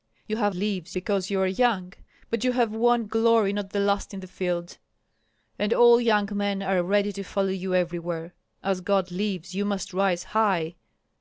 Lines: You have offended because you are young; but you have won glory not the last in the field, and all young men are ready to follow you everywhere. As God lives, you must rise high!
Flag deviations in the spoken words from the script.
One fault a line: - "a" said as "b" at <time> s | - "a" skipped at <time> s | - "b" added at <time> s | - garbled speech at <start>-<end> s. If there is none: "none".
- "offended" said as "lives" at 0.5 s